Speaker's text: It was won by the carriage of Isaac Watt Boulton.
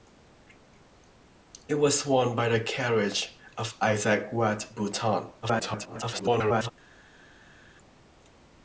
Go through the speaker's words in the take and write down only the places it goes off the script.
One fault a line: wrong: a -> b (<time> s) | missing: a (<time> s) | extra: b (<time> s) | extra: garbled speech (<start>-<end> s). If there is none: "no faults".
extra: garbled speech (5.4-6.7 s)